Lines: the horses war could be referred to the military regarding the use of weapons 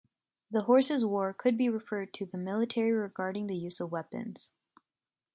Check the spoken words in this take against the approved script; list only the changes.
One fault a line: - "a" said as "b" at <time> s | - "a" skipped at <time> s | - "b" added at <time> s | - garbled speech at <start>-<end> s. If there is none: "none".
none